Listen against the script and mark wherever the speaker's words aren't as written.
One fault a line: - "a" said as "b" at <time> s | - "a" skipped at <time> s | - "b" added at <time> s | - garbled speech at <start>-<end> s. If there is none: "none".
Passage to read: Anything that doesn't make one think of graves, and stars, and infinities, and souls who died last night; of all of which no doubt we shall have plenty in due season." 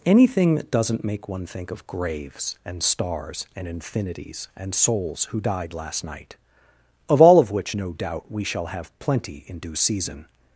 none